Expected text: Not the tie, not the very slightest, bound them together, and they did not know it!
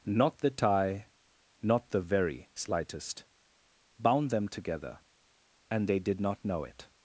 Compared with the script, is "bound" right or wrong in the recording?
right